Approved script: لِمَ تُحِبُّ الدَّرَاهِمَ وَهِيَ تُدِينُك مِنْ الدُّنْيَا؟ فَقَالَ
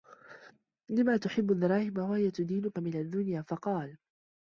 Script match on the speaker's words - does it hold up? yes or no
yes